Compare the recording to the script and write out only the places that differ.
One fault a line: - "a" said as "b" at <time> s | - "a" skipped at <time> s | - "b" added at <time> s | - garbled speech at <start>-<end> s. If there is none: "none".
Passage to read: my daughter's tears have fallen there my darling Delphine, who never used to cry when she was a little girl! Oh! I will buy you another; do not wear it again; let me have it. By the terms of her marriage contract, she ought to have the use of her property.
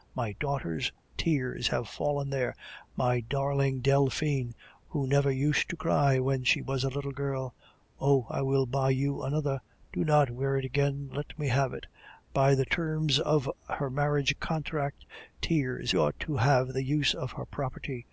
- "she" said as "tears" at 15.4 s